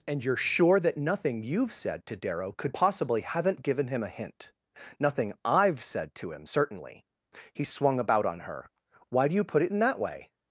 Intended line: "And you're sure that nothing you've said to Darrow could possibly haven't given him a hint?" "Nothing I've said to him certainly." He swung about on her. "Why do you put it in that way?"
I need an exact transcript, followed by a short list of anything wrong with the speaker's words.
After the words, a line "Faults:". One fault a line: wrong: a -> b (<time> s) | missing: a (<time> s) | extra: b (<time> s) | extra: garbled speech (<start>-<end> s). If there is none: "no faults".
"And you're sure that nothing you've said to Darrow could possibly haven't given him a hint?" "Nothing I've said to him certainly." He swung about on her. "Why do you put it in that way?"
Faults:
no faults